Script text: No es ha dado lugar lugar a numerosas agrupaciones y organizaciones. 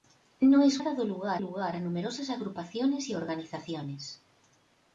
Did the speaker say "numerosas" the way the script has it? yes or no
yes